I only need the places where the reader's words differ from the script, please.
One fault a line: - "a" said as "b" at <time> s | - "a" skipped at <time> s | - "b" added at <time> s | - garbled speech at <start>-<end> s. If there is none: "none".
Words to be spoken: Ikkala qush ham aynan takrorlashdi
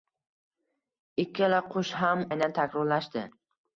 none